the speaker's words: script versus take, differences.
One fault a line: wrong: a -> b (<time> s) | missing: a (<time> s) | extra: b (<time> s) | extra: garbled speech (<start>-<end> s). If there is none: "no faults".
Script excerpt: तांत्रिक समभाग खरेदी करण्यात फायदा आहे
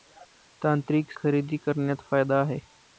missing: समभाग (1.1 s)